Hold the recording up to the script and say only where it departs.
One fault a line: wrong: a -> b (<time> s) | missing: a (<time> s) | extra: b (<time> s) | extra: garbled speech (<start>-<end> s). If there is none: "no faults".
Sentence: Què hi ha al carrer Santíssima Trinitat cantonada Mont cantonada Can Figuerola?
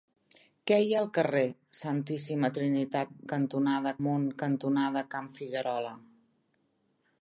no faults